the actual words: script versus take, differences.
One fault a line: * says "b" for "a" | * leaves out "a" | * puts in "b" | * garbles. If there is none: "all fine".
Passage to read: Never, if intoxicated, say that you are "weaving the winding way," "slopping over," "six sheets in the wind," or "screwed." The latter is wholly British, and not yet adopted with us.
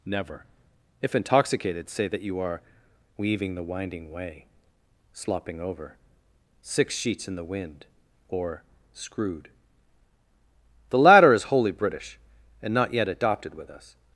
all fine